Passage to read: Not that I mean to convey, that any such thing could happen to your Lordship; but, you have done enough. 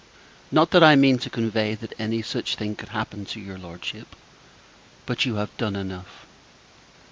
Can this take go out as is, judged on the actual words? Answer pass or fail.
pass